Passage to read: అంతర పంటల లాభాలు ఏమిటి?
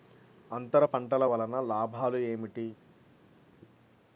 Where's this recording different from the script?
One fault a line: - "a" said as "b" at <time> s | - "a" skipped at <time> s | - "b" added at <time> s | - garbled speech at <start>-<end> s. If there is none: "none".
- "వలన" added at 1.2 s